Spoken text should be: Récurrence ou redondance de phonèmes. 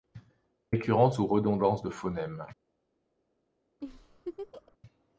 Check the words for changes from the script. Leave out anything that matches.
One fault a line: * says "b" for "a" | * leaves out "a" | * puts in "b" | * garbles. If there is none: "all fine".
all fine